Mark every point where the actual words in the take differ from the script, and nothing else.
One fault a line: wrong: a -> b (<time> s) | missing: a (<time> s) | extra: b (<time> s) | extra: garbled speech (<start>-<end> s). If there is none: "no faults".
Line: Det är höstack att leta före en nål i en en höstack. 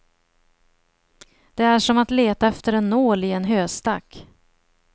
wrong: höstack -> som (1.8 s)
wrong: före -> efter (2.4 s)
missing: en (3.4 s)